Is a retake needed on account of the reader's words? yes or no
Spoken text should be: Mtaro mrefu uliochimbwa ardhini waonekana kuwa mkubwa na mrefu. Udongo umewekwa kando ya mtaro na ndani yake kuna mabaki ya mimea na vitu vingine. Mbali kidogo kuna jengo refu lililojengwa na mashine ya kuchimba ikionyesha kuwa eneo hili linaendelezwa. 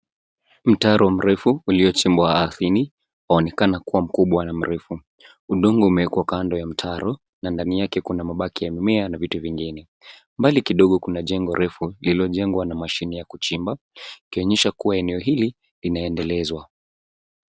no